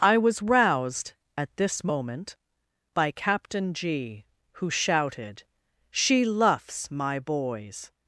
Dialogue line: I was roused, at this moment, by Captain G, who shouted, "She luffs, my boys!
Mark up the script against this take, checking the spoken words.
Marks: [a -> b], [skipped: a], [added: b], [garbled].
I was roused, at this moment, by Captain G, who shouted, "She luffs, my boys!